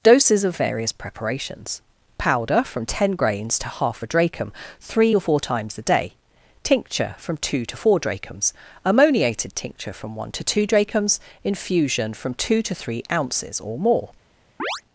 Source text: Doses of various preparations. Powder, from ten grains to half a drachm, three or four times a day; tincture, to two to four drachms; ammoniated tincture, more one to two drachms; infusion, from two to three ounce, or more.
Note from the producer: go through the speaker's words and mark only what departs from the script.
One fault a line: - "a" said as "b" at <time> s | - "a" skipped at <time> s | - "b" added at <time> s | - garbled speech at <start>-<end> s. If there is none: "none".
- "to" said as "from" at 7.2 s
- "more" said as "from" at 9.9 s
- "ounce" said as "ounces" at 13.1 s